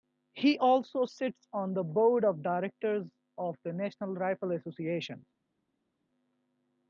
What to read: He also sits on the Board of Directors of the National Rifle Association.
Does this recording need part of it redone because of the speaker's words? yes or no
no